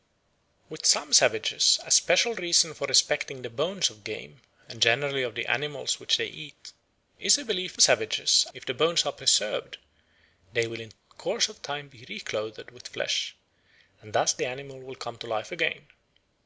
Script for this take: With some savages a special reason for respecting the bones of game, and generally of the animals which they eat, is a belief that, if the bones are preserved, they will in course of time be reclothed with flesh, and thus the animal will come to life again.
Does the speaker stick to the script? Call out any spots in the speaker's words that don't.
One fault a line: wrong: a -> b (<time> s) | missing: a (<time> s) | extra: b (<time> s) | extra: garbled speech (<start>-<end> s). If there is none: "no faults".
wrong: that -> savages (7.8 s)